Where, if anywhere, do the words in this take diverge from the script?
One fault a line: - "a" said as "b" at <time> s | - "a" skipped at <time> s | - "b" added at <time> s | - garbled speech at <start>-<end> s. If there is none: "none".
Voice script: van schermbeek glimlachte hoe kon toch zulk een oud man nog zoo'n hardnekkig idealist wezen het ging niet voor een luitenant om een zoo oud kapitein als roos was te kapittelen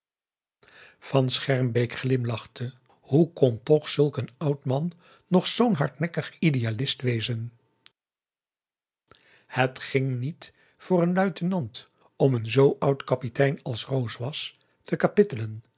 none